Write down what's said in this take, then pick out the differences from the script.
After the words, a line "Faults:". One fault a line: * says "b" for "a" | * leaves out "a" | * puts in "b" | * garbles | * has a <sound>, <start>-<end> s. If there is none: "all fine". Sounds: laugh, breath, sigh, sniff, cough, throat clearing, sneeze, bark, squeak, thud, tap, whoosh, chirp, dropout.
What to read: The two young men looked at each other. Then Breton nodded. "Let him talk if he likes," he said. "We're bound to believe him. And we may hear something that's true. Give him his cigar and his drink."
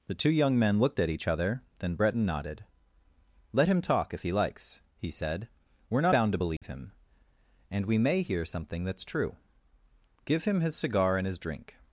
The two young men looked at each other. Then Breton nodded. "Let him talk if he likes," he said. "We're bound to believe him. And we may hear something that's true. Give him his cigar and his drink."
Faults:
* has a dropout, 6.6-6.6 s